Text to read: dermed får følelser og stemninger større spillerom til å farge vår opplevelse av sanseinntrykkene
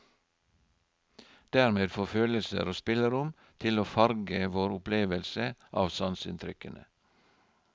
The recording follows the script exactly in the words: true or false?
false